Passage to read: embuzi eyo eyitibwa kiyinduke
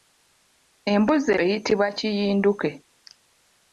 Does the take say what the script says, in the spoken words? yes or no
no